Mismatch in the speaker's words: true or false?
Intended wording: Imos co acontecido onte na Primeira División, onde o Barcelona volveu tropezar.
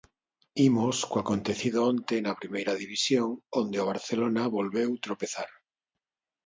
false